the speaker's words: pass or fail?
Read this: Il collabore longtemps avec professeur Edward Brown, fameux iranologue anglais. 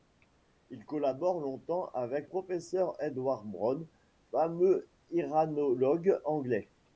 pass